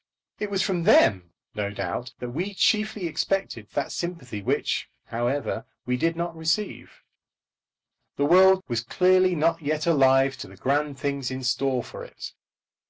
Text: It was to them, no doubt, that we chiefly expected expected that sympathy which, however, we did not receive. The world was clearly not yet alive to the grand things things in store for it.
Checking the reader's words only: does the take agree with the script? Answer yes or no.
no